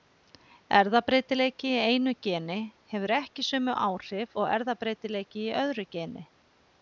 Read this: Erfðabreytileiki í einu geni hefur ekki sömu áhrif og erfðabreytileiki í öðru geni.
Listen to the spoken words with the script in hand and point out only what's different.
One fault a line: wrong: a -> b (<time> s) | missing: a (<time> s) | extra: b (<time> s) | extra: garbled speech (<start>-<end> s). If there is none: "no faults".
no faults